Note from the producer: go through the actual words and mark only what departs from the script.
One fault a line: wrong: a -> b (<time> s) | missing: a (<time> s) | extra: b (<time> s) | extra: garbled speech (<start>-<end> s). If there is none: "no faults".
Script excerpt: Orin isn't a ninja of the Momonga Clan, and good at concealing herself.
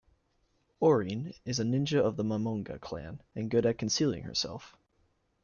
wrong: isn't -> is (1.4 s)